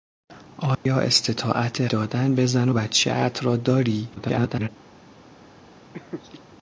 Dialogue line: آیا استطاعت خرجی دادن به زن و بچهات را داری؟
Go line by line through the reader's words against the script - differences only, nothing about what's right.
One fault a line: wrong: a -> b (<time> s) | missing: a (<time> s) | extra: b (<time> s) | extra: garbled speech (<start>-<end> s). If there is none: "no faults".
missing: خرجی (1.9 s)
extra: garbled speech (4.2-4.7 s)